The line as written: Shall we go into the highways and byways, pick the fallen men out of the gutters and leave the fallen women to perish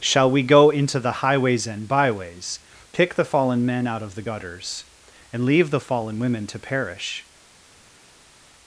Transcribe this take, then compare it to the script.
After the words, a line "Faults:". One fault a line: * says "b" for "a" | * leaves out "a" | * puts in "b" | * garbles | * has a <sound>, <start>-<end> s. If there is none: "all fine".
Shall we go into the highways and byways, pick the fallen men out of the gutters and leave the fallen women to perish
Faults:
all fine